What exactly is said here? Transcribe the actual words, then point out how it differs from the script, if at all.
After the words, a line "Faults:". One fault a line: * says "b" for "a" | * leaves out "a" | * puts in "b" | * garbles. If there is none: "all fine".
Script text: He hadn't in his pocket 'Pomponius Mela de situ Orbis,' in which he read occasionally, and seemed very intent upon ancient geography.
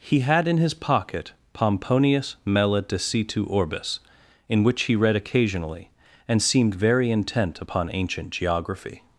He had in his pocket 'Pomponius Mela de situ Orbis,' in which he read occasionally, and seemed very intent upon ancient geography.
Faults:
* says "had" for "hadn't"